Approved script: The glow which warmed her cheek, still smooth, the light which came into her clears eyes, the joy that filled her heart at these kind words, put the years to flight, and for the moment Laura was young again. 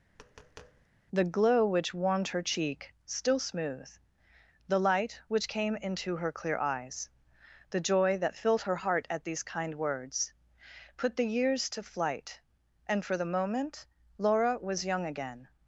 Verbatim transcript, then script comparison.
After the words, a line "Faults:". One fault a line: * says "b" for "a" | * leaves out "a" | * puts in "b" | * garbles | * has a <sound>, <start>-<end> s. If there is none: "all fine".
The glow which warmed her cheek, still smooth, the light which came into her clear eyes, the joy that filled her heart at these kind words, put the years to flight, and for the moment Laura was young again.
Faults:
* has a tap, 0.1-0.9 s
* says "clear" for "clears"